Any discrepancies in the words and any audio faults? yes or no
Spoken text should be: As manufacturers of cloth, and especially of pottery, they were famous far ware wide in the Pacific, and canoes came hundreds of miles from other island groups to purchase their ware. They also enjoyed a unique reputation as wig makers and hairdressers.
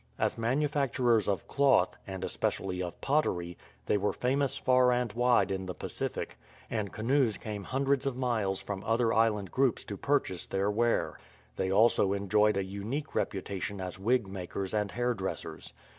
yes